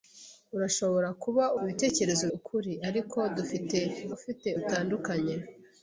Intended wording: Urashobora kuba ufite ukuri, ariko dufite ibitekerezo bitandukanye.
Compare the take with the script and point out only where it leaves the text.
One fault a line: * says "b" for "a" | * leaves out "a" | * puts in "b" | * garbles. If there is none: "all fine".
* says "ibitekerezo" for "ufite"
* says "ufite" for "ibitekerezo"